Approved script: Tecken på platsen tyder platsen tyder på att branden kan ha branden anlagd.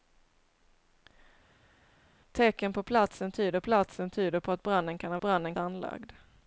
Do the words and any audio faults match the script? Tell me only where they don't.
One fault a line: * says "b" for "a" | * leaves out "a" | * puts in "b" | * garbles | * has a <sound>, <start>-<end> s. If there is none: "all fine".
all fine